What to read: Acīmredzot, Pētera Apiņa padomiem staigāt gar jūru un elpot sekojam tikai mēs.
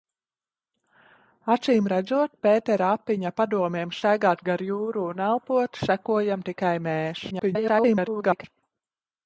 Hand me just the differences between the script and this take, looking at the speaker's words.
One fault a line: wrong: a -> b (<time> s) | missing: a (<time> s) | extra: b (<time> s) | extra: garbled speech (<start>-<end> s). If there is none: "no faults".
extra: garbled speech (7.3-8.4 s)